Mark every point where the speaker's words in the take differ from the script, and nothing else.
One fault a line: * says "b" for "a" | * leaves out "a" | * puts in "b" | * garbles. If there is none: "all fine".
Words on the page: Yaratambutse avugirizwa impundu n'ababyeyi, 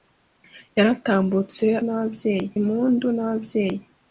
* says "n'ababyeyi" for "avugirizwa"